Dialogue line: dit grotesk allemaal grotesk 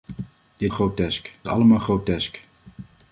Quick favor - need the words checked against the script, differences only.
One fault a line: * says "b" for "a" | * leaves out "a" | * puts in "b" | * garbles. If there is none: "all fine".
all fine